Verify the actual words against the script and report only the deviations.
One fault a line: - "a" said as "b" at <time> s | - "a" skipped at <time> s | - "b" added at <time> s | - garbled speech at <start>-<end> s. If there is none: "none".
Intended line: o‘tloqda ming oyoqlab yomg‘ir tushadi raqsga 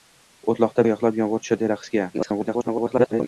- "ming" skipped at 0.8 s
- garbled speech at 2.1-3.3 s